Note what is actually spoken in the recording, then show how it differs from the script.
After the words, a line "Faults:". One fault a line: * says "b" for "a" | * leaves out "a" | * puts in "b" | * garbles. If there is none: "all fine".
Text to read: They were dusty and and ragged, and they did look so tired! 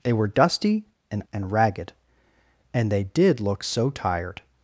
They were dusty and and ragged, and they did look so tired!
Faults:
all fine